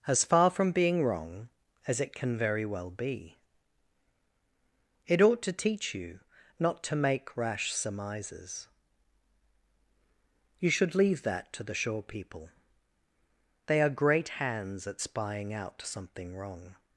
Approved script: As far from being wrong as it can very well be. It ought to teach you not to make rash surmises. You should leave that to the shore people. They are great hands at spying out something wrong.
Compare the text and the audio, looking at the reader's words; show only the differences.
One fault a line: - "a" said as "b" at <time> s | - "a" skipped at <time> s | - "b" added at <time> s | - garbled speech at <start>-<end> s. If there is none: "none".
none